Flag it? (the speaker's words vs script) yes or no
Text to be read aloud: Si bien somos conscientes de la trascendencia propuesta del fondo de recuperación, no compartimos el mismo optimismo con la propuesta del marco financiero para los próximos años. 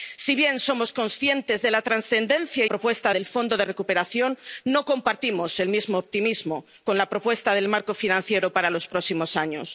no